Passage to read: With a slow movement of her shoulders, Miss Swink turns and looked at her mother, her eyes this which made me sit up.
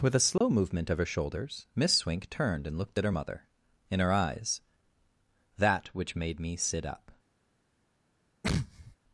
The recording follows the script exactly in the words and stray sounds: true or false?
false